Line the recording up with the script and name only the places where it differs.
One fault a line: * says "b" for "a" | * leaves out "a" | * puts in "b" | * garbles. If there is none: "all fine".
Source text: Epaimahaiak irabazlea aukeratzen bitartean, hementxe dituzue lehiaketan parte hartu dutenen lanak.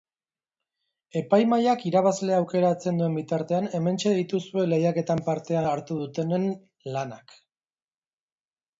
* puts in "duen"